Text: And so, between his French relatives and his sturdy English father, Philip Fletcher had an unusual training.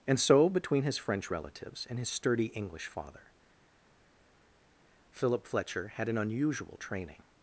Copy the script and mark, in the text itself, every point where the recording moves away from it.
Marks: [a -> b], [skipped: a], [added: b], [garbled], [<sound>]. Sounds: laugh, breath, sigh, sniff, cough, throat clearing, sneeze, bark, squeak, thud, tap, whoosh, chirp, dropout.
And so, between his French relatives and his sturdy English father, Philip Fletcher had an unusual training.